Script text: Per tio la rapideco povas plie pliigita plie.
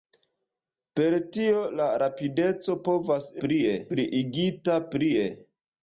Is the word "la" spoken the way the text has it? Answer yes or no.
yes